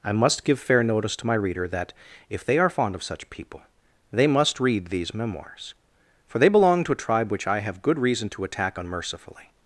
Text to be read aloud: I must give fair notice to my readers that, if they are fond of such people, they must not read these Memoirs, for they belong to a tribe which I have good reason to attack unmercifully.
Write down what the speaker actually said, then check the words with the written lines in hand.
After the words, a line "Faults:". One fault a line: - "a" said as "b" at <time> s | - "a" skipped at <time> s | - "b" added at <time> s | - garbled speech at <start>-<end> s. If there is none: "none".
I must give fair notice to my reader that, if they are fond of such people, they must read these Memoirs, for they belong to a tribe which I have good reason to attack unmercifully.
Faults:
- "readers" said as "reader" at 1.4 s
- "not" skipped at 4.6 s